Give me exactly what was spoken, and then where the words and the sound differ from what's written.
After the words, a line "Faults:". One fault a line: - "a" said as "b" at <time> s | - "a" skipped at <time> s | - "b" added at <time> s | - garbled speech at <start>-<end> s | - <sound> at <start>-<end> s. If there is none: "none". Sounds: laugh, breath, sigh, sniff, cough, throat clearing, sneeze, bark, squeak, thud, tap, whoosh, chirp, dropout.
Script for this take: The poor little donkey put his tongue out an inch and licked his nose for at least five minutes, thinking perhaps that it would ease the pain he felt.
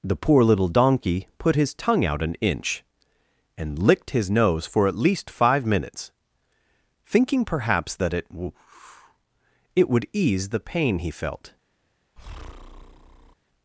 The poor little donkey put his tongue out an inch and licked his nose for at least five minutes, thinking perhaps that it it would ease the pain he felt.
Faults:
- "it" added at 9.8 s
- breath at 12.2-13.3 s